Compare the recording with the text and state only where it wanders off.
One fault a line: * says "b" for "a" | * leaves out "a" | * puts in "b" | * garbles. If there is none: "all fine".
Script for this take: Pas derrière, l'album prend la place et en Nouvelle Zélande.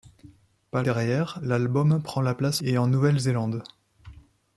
all fine